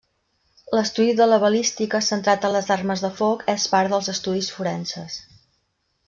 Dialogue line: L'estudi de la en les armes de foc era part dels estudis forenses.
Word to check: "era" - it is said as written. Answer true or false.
false